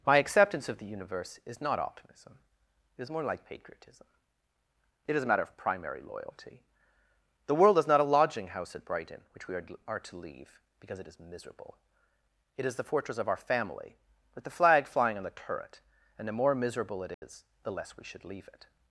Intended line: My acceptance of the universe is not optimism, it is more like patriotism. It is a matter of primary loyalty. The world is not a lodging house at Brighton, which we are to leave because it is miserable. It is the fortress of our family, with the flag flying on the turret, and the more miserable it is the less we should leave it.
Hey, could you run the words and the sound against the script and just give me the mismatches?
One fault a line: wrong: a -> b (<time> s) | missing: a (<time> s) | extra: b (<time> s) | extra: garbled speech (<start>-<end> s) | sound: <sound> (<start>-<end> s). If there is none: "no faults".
extra: are (9.9 s)
sound: dropout (17.1-17.2 s)